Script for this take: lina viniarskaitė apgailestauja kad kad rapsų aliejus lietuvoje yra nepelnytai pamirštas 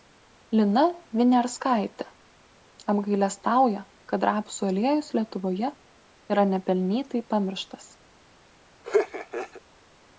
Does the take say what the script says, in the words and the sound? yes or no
no